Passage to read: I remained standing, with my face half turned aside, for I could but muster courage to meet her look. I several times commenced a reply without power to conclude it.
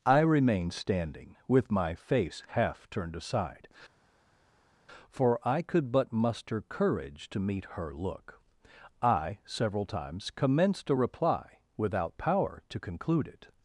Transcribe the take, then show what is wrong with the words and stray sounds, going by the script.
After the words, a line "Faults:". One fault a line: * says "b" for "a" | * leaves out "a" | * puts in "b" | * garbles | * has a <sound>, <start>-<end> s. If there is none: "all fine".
I remained standing, with my face half turned aside, for I could but muster courage to meet her look. I several times commenced a reply without power to conclude it.
Faults:
all fine